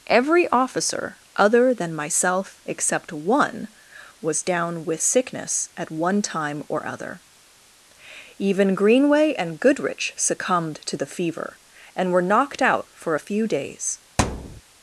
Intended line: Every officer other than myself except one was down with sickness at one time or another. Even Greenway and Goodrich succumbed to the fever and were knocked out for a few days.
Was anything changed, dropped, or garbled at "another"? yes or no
yes